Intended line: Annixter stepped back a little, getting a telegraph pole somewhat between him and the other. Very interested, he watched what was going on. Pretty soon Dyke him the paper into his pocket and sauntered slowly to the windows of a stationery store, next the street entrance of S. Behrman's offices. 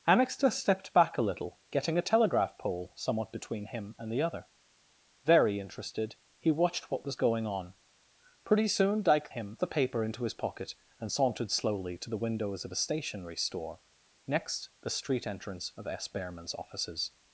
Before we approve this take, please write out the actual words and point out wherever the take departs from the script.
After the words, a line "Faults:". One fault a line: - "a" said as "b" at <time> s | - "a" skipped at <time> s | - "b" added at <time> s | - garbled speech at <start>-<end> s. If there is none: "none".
Annixter stepped back a little, getting a telegraph pole somewhat between him and the other. Very interested, he watched what was going on. Pretty soon Dyke him the paper into his pocket and sauntered slowly to the windows of a stationery store, next the street entrance of S. Behrman's offices.
Faults:
none